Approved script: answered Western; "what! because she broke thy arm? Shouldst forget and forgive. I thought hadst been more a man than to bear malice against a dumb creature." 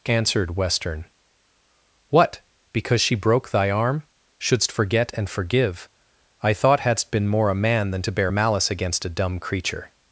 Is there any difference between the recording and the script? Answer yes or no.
no